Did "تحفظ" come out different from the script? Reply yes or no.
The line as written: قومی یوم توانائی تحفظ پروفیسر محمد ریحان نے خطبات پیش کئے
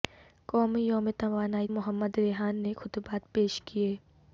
yes